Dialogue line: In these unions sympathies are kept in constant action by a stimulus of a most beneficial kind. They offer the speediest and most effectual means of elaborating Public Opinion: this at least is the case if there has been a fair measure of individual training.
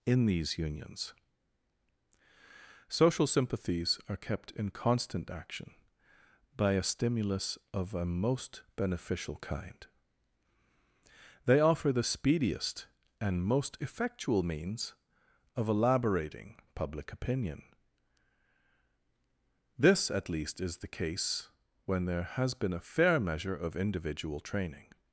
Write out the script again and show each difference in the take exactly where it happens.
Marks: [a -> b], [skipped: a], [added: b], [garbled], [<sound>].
In these unions [added: social] sympathies are kept in constant action by a stimulus of a most beneficial kind. They offer the speediest and most effectual means of elaborating Public Opinion: this at least is the case [if -> when] there has been a fair measure of individual training.